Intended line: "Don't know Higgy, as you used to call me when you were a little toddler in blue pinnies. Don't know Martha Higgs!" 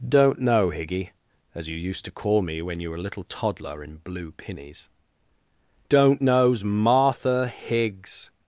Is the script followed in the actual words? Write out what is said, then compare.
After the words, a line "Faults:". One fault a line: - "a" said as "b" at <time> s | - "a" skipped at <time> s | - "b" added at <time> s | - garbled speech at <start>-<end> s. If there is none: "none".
"Don't know Higgy, as you used to call me when you were a little toddler in blue pinnies. Don't knows Martha Higgs!"
Faults:
- "know" said as "knows" at 6.2 s